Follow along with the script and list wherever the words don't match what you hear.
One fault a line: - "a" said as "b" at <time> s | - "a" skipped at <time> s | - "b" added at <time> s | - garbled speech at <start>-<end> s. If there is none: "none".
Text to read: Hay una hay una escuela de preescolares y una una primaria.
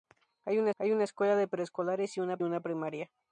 none